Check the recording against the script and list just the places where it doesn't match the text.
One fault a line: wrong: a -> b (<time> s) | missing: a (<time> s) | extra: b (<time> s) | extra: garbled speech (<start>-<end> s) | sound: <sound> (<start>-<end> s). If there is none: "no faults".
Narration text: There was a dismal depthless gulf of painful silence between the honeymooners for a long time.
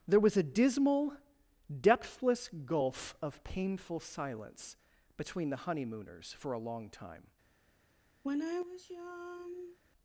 sound: sigh (8.2-9.8 s)